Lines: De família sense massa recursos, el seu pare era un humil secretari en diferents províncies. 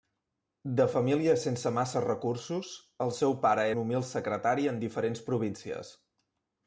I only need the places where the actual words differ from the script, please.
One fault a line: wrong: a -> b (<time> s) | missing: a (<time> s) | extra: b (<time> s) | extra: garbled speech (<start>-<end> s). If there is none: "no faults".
missing: era (3.7 s)